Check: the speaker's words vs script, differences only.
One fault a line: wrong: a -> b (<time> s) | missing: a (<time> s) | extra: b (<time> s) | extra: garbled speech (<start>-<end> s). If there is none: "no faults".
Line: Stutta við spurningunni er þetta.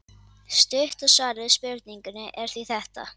extra: svarið (1.1 s)
extra: því (2.5 s)